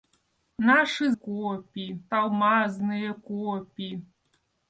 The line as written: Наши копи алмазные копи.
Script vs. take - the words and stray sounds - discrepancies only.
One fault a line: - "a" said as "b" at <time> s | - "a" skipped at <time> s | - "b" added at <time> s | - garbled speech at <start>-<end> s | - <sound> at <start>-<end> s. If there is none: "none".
none